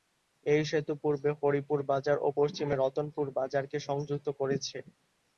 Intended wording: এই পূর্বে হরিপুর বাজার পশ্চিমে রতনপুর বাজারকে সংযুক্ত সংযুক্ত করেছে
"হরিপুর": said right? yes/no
yes